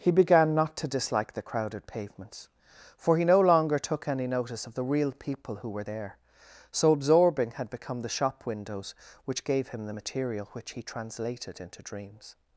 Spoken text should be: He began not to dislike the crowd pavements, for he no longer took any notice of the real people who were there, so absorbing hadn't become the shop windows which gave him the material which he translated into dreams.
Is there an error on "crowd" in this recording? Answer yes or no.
yes